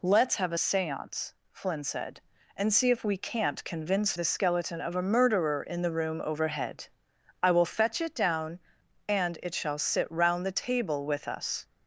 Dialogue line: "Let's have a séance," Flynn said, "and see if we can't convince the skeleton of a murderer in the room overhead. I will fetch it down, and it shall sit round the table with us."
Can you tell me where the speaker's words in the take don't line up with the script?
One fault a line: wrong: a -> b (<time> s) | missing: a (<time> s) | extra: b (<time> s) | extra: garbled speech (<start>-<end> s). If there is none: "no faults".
no faults